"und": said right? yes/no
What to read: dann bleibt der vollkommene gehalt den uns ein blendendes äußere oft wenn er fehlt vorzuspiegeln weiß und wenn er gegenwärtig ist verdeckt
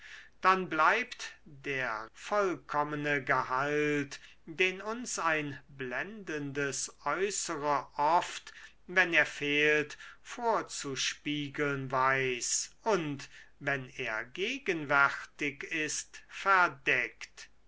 yes